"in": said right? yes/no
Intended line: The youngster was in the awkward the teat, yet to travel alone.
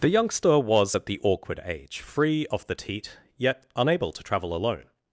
no